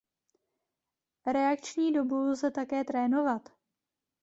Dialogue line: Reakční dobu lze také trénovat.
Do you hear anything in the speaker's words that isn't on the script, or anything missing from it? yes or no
no